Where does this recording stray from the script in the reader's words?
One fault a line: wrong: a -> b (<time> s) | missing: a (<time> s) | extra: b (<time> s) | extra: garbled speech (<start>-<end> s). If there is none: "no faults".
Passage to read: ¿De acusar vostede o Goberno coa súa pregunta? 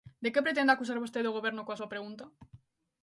extra: que pretende (0.3 s)